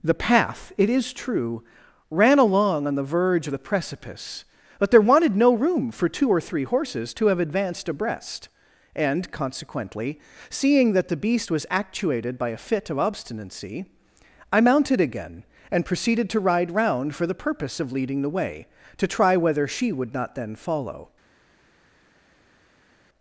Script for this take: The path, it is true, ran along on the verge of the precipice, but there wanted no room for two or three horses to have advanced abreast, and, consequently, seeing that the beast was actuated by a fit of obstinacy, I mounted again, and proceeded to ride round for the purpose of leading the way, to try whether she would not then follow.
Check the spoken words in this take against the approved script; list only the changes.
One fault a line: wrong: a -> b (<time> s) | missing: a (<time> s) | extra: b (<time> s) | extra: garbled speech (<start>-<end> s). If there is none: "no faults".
no faults